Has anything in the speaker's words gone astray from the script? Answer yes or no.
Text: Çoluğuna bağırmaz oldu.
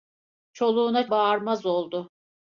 no